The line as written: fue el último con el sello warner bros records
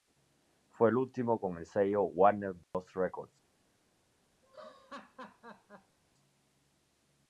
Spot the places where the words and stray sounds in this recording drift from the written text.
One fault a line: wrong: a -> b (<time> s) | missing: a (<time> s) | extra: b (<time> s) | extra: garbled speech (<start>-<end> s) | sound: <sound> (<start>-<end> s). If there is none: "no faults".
sound: dropout (2.6-2.7 s)
sound: laugh (4.4-6.0 s)